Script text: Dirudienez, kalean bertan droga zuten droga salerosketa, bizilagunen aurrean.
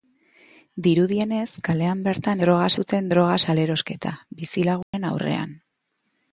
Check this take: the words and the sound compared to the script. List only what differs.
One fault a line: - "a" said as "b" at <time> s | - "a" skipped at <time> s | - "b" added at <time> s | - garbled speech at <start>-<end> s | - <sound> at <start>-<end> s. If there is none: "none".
- dropout at 4.8-4.9 s